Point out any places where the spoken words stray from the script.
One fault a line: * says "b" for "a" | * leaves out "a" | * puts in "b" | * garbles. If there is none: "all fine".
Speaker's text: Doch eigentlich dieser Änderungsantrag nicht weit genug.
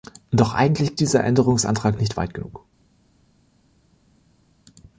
all fine